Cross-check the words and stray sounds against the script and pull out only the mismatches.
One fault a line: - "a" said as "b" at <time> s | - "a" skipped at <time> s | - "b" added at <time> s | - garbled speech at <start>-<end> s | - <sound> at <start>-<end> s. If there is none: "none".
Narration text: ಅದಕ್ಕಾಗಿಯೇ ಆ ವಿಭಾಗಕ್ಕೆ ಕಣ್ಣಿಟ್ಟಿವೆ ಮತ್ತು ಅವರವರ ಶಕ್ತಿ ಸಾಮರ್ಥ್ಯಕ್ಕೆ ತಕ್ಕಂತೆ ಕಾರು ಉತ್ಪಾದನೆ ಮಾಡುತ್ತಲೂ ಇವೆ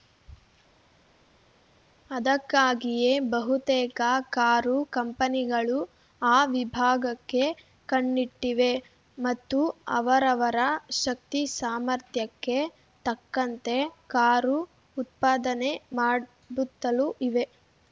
- "ಬಹುತೇಕ ಕಾರು ಕಂಪನಿಗಳು" added at 3.3 s